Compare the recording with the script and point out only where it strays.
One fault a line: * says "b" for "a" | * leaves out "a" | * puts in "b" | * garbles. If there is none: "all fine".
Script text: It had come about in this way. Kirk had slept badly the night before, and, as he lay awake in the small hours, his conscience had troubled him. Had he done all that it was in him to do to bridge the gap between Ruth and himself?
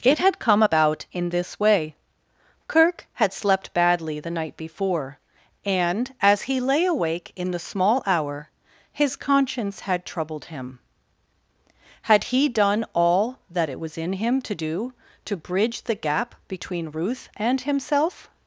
* says "hour" for "hours"